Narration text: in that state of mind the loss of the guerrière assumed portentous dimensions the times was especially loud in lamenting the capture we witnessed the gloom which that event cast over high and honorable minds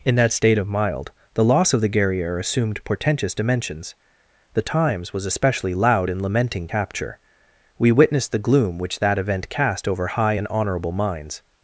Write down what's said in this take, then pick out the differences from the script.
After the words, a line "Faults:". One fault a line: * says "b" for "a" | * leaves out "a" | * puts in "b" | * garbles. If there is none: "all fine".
in that state of mild the loss of the guerrière assumed portentous dimensions the times was especially loud in lamenting capture we witnessed the gloom which that event cast over high and honorable minds
Faults:
* says "mild" for "mind"
* leaves out "the"